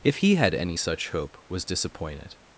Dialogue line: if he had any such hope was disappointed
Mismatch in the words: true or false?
false